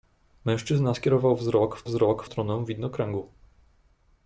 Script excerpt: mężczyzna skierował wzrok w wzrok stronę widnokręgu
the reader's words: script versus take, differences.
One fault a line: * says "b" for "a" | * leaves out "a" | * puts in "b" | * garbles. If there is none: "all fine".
all fine